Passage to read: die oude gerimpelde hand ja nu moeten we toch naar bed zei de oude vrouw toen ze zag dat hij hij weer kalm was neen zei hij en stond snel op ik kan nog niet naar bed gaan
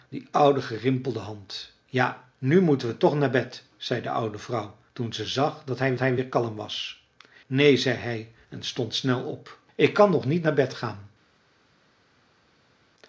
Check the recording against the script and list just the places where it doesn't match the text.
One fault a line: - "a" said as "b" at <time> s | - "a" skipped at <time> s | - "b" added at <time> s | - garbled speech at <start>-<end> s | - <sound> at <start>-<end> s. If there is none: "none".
none